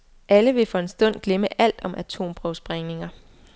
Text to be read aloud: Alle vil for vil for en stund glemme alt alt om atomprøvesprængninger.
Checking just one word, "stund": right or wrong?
right